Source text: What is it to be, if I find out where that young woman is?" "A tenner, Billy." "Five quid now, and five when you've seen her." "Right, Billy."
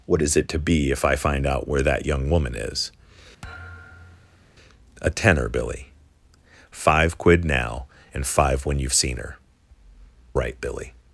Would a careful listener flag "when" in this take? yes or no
no